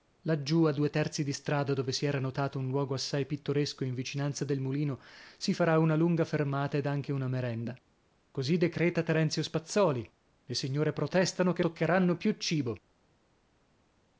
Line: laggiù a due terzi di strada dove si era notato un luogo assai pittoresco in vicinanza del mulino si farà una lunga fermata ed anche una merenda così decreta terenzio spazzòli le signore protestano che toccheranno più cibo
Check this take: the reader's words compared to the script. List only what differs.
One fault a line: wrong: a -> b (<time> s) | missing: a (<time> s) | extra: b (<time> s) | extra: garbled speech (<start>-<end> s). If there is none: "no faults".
no faults